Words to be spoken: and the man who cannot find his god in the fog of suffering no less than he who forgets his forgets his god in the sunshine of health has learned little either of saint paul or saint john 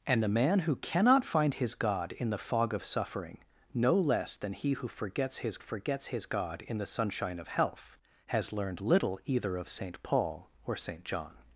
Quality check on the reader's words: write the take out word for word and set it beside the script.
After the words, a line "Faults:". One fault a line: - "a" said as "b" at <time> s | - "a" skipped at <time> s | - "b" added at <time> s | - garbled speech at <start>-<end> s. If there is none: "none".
and the man who cannot find his god in the fog of suffering no less than he who forgets his forgets his god in the sunshine of health has learned little either of saint paul or saint john
Faults:
none